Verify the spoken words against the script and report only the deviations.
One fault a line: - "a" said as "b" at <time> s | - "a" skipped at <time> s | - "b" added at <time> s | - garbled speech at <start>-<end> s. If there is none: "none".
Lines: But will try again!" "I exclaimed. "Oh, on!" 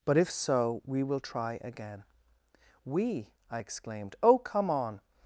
- "if so we" added at 0.2 s
- "We" added at 2.8 s
- "come" added at 4.4 s